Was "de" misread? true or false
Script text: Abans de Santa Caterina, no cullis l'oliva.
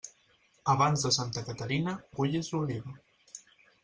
false